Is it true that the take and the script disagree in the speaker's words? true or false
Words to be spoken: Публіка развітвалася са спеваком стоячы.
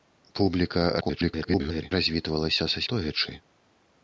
true